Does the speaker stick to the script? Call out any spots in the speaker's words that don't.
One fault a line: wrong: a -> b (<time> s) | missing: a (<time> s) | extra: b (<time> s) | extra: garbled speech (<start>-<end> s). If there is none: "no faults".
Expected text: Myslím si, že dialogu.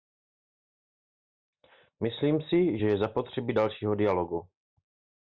extra: je zapotřebí dalšího (2.8 s)